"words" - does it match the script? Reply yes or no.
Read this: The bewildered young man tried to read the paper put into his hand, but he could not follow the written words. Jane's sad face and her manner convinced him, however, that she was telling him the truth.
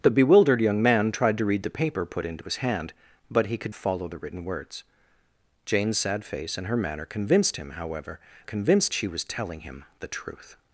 yes